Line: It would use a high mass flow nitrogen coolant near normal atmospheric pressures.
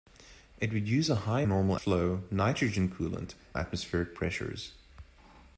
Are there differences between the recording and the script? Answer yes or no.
yes